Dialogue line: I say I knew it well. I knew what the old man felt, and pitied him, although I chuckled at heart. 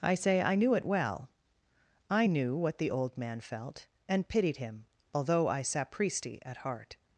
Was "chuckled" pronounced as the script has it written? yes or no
no